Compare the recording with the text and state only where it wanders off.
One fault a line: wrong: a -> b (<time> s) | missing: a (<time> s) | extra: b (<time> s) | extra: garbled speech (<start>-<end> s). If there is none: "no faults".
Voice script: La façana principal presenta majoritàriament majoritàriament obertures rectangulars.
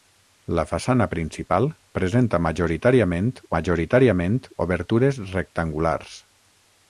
no faults